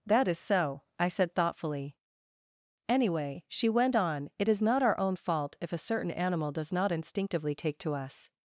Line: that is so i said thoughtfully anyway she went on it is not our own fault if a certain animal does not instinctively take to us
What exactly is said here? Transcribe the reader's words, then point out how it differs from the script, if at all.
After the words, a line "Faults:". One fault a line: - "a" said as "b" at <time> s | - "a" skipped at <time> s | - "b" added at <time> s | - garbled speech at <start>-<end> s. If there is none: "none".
that is so i said thoughtfully anyway she went on it is not our own fault if a certain animal does not instinctively take to us
Faults:
none